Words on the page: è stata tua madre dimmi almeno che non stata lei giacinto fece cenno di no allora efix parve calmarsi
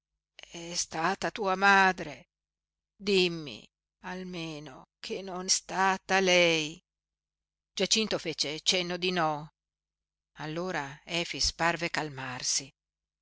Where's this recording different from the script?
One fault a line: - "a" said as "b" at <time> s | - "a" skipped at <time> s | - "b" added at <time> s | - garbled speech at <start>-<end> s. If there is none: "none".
none